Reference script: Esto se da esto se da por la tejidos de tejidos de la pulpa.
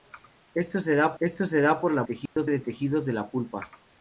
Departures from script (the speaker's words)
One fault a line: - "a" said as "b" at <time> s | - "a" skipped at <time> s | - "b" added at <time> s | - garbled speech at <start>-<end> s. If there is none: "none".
none